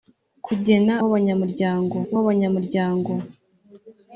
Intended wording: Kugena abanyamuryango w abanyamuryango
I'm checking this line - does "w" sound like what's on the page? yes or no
yes